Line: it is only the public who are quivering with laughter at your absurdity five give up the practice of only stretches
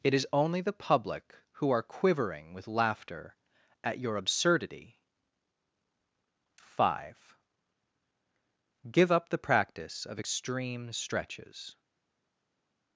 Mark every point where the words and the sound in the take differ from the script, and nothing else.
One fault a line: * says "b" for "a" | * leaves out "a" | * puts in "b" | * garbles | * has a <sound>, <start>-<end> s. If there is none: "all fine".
* says "extreme" for "only"